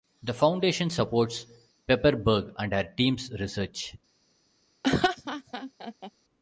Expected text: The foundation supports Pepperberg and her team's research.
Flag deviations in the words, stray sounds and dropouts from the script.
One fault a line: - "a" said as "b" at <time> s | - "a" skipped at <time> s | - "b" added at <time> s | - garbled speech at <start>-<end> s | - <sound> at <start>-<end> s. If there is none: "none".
- laugh at 4.8-6.1 s